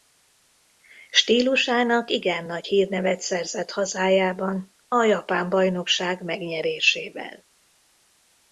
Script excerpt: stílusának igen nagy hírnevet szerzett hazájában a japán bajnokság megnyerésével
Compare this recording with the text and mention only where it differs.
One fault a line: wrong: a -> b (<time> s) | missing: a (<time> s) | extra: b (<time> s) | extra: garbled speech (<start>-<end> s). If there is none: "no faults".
no faults